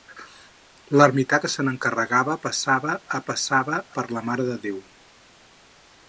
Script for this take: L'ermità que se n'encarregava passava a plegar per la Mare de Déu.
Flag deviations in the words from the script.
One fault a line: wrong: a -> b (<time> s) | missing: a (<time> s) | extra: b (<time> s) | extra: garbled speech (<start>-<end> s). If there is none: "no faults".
wrong: plegar -> passava (3.3 s)